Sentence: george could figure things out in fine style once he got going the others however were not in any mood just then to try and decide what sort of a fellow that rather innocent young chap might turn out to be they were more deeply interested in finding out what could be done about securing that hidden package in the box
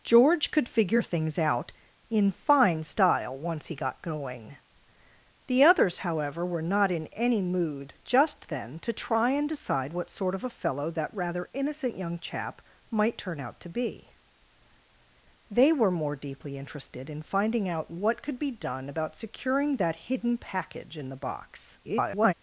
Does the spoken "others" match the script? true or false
true